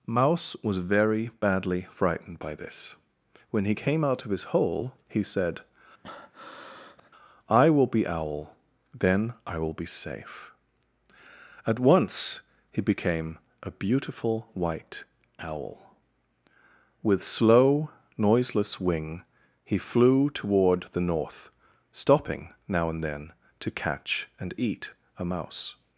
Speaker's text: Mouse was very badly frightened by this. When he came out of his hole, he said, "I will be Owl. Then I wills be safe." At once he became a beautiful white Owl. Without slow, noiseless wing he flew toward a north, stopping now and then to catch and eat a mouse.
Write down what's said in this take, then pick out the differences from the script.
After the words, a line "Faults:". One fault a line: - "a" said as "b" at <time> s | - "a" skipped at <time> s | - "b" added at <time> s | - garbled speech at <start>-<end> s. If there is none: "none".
Mouse was very badly frightened by this. When he came out of his hole, he said, "I will be Owl. Then I will be safe." At once he became a beautiful white Owl. With slow, noiseless wing he flew toward the north, stopping now and then to catch and eat a mouse.
Faults:
- "wills" said as "will" at 9.6 s
- "Without" said as "With" at 17.0 s
- "a" said as "the" at 20.9 s